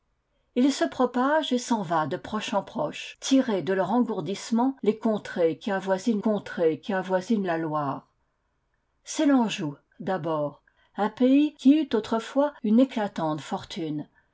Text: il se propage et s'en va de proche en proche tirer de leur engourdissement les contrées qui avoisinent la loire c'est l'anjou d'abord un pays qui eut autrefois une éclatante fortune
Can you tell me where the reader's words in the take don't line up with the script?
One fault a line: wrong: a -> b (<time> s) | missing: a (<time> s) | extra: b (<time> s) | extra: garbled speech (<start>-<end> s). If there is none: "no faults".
extra: contrées qui avoisinent (6.2 s)